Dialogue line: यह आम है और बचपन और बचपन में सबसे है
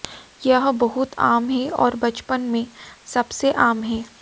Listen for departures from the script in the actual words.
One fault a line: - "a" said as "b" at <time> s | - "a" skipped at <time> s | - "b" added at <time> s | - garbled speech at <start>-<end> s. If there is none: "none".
- "बहुत" added at 0.8 s
- "और बचपन" skipped at 2.4 s
- "आम" added at 3.6 s